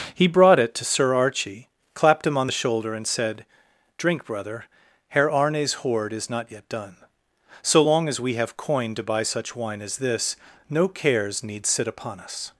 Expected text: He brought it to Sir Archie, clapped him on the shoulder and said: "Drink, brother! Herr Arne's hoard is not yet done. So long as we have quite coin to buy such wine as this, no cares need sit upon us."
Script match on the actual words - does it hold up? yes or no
no